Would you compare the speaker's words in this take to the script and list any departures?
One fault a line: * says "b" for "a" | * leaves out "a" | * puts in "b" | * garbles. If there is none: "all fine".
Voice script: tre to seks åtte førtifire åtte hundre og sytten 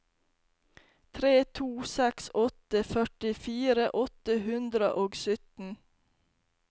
all fine